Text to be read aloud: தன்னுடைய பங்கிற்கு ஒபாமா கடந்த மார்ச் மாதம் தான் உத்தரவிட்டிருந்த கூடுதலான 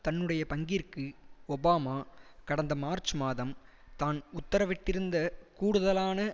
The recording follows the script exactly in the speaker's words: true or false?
true